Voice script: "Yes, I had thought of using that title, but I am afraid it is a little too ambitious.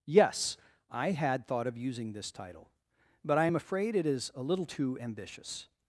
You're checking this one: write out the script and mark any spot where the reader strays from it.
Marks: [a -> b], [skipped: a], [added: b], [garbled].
"Yes, I had thought of using [that -> this] title, but I am afraid it is a little too ambitious.